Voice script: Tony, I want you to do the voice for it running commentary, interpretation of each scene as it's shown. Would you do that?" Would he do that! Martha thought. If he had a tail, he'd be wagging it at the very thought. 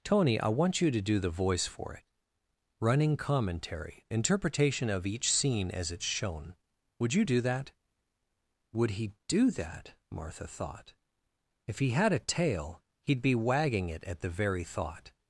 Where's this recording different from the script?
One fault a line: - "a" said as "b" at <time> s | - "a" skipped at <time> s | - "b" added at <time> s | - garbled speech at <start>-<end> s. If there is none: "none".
none